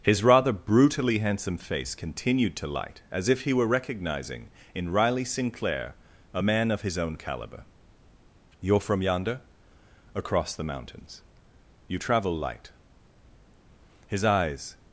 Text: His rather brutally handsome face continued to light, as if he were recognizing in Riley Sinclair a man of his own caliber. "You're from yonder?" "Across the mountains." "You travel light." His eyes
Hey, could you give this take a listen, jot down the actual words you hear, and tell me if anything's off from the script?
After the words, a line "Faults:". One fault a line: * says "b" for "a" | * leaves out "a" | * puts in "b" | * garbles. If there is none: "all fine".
His rather brutally handsome face continued to light, as if he were recognizing in Riley Sinclair a man of his own caliber. "You're from yonder?" "Across the mountains." "You travel light." His eyes
Faults:
all fine